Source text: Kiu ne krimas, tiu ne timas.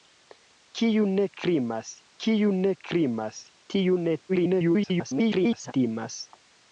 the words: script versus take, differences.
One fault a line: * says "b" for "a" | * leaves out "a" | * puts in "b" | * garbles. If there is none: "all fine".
* puts in "kiu ne krimas"
* garbles